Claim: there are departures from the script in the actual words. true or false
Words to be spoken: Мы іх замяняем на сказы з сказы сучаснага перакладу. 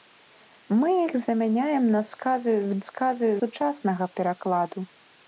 false